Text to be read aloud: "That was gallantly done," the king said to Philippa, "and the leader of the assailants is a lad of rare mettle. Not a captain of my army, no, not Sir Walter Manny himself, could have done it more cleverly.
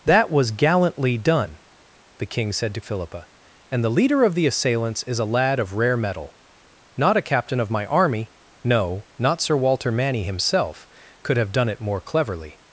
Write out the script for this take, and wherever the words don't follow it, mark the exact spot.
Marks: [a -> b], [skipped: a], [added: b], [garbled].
"That was gallantly done," the king said to Philippa, "and the leader of the assailants is a lad of rare mettle. Not a captain of my army, no, not Sir Walter Manny himself, could have done it more cleverly.